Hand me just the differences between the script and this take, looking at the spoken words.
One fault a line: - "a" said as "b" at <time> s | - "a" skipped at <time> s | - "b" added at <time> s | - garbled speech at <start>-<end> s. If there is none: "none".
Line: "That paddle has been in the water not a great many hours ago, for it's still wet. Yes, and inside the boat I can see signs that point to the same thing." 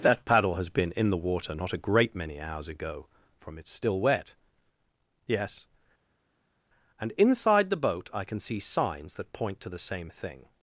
- "for" said as "from" at 3.4 s